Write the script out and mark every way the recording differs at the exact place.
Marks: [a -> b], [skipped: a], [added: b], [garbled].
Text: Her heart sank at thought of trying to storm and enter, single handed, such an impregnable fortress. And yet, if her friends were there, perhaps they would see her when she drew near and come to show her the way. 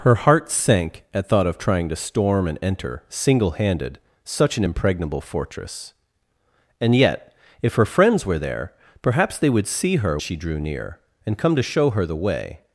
Her heart sank at thought of trying to storm and enter, single handed, such an impregnable fortress. And yet, if her friends were there, perhaps they would see her [skipped: when] she drew near and come to show her the way.